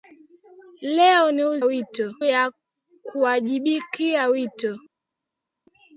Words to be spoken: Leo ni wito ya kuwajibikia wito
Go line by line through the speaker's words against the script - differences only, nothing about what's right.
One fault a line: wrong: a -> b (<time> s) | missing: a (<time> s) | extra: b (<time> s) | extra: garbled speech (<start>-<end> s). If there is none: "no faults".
no faults